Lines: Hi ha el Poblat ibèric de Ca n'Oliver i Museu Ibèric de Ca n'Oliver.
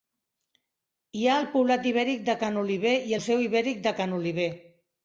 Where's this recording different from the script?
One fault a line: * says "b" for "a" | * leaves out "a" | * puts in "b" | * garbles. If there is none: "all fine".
all fine